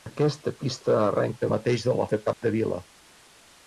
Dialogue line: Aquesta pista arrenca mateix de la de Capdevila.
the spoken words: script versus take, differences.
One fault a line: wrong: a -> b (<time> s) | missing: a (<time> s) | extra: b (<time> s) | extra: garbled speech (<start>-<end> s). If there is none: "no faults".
no faults